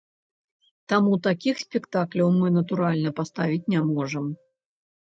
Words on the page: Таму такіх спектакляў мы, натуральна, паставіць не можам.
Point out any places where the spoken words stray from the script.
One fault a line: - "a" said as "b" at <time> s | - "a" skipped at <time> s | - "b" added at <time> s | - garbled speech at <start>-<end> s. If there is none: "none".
none